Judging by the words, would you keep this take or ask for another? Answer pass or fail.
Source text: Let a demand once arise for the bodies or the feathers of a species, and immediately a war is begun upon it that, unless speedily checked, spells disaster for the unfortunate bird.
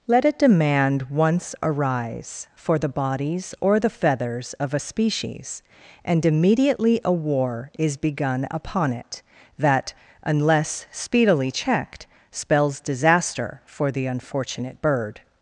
pass